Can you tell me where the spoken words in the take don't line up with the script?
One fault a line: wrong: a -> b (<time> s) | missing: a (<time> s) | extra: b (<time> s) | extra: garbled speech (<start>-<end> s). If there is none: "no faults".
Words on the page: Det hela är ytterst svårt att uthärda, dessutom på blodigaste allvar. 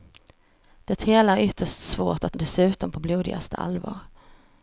missing: uthärda (2.4 s)